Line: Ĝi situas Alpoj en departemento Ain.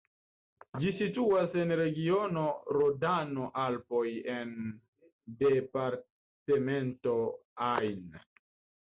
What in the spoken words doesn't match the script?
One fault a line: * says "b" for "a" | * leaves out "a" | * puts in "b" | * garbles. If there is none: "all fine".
* puts in "en regiono Rodano"